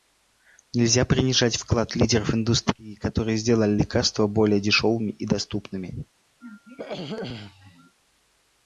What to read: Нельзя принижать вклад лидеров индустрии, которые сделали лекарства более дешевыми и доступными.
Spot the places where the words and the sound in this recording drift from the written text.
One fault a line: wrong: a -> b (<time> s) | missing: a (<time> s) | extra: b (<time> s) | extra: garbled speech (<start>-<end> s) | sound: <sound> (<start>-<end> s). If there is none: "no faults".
sound: throat clearing (6.4-8.0 s)